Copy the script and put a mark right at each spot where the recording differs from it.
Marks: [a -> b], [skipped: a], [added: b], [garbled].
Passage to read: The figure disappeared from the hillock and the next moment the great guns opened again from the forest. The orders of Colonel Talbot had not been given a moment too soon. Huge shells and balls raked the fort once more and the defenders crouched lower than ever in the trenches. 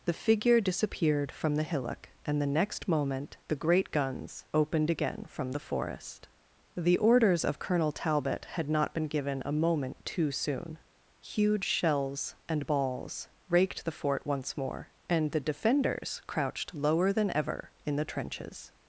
The figure disappeared from the hillock and the next moment the great guns opened again from the forest. The orders of Colonel Talbot had not been given a moment too soon. Huge shells and balls raked the fort once more and the defenders crouched lower than ever in the trenches.